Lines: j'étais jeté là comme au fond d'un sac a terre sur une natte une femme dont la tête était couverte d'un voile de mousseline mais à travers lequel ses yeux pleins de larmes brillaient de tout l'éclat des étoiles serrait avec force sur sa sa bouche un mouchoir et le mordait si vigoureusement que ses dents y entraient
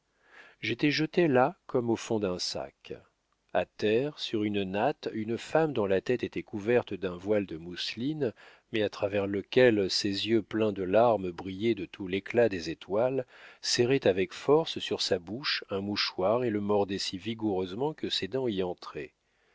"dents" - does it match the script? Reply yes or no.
yes